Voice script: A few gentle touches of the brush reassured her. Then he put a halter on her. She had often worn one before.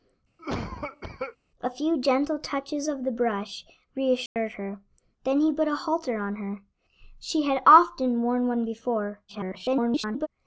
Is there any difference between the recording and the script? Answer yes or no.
yes